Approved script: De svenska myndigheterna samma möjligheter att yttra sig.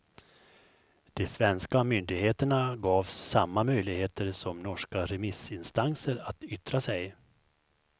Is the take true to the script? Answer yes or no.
no